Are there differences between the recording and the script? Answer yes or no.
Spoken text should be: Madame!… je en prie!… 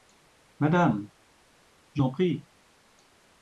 no